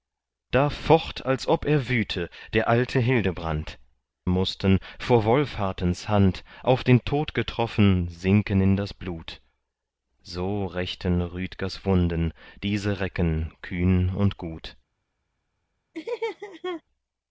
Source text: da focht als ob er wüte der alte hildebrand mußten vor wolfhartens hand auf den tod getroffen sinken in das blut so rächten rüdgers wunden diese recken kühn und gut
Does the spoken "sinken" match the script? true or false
true